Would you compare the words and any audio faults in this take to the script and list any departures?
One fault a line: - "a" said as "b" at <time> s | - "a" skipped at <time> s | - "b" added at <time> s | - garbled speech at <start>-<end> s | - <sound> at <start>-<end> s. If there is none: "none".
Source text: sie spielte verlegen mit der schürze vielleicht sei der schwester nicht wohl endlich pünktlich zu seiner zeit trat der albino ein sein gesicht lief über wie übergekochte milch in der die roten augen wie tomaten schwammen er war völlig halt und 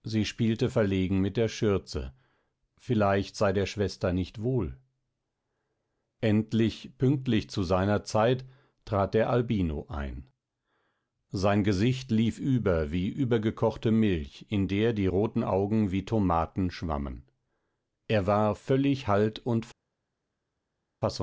none